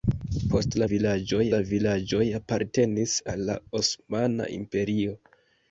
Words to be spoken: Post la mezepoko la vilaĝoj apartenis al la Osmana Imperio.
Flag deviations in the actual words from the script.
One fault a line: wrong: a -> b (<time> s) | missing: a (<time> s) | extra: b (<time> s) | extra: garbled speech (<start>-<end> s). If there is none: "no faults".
wrong: mezepoko -> vilaĝoj (0.9 s)